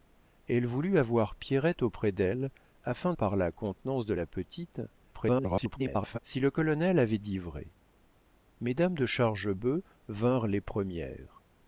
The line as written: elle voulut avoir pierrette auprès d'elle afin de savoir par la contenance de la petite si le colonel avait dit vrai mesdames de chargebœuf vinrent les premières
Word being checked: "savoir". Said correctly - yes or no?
no